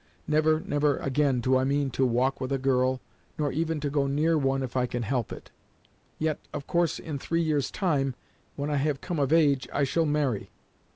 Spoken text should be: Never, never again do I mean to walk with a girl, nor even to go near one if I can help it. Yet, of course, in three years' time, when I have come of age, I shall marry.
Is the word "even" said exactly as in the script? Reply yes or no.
yes